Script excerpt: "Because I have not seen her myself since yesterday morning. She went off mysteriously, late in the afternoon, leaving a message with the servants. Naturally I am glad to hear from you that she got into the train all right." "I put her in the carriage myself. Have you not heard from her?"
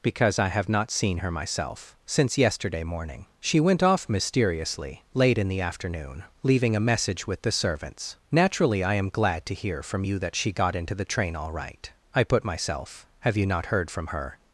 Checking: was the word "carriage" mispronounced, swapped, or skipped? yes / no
yes